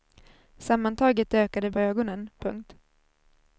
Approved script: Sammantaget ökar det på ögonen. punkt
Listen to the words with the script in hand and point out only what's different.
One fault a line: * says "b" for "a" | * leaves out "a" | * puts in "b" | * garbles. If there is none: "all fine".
all fine